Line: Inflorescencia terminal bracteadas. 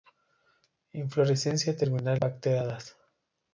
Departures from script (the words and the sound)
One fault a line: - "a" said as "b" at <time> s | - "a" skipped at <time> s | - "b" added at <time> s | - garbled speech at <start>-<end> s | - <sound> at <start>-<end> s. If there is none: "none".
none